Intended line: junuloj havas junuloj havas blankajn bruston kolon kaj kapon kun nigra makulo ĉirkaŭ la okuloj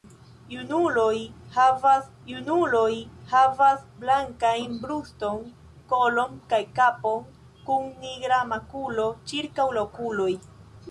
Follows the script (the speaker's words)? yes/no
yes